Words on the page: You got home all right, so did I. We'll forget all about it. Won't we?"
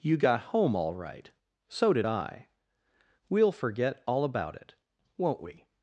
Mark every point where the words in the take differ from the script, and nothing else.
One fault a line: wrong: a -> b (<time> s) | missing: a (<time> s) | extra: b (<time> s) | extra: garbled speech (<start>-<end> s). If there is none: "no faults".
no faults